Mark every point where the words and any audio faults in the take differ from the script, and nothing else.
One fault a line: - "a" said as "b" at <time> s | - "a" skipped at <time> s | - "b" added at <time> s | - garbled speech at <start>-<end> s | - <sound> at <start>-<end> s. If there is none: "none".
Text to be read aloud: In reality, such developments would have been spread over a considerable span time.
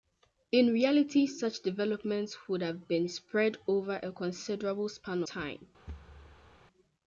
- thud at 5.9-6.6 s